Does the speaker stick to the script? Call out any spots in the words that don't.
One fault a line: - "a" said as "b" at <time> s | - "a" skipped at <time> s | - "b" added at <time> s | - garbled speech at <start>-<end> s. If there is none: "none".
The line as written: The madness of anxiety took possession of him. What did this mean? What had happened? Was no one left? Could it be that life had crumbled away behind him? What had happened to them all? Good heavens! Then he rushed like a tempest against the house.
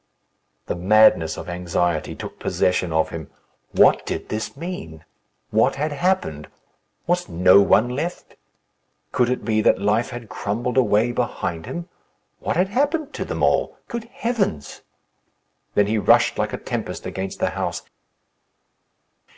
none